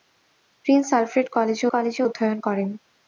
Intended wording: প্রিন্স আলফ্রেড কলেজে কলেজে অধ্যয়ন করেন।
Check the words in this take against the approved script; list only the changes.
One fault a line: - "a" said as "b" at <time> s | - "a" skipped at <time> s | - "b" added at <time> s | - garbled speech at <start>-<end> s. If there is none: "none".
none